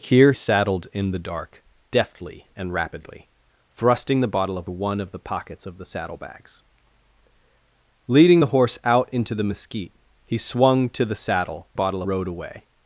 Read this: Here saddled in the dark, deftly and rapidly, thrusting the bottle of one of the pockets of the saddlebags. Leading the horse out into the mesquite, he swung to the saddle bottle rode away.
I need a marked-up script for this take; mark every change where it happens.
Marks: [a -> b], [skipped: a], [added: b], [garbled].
Here saddled in the dark, deftly and rapidly, thrusting the bottle of one of the pockets of the saddlebags. Leading the horse out into the mesquite, he swung to the saddle bottle rode away.